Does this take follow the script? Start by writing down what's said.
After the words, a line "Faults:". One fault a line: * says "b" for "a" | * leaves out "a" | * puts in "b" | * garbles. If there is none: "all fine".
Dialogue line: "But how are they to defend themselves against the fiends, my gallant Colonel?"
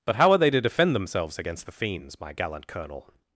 "But how are they to defend themselves against the fiends, my gallant Colonel?"
Faults:
all fine